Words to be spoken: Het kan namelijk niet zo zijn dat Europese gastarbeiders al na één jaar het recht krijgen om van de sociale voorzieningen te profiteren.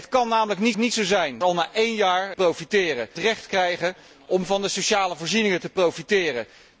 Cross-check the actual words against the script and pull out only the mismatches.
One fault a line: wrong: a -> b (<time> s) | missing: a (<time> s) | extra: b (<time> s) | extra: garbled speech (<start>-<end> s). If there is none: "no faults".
extra: niet (0.8 s)
missing: dat Europese gastarbeiders (1.4 s)
wrong: het -> profiteren (2.3 s)